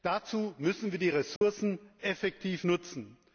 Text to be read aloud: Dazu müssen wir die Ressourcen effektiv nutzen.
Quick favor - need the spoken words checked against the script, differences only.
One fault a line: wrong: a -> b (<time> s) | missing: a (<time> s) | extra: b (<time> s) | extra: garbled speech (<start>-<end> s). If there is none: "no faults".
no faults